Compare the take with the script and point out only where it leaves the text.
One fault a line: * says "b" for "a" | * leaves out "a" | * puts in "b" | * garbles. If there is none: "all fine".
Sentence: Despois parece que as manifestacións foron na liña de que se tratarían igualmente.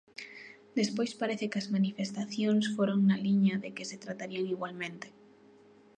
all fine